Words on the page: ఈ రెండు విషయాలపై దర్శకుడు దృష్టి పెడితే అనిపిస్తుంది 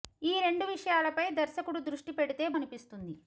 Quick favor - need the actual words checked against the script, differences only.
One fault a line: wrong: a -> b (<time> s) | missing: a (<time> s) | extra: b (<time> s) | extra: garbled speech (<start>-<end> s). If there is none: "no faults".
no faults